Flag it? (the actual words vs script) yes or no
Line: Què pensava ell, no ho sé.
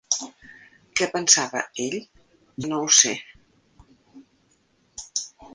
no